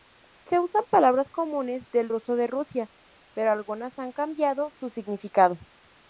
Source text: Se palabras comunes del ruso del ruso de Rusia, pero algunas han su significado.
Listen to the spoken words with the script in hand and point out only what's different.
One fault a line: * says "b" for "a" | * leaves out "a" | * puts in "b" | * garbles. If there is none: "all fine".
* puts in "usan"
* leaves out "del ruso"
* puts in "cambiado"